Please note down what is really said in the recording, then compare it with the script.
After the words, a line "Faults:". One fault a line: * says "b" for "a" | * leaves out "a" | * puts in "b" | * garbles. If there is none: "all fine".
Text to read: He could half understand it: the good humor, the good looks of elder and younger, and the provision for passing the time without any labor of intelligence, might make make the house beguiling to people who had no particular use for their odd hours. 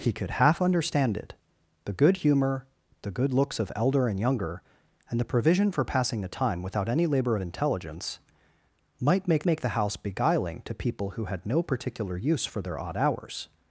He could half understand it: the good humor, the good looks of elder and younger, and the provision for passing the time without any labor of intelligence, might make make the house beguiling to people who had no particular use for their odd hours.
Faults:
all fine